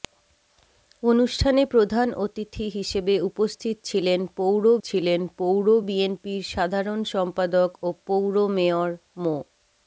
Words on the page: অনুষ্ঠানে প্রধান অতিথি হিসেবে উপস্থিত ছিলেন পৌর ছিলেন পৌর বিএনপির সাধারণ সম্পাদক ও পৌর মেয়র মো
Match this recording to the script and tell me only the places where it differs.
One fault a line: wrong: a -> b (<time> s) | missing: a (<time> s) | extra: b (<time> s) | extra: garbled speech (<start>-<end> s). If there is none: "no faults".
no faults